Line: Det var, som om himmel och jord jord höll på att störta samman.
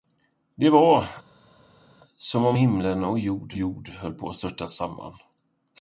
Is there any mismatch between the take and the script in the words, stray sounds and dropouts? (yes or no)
no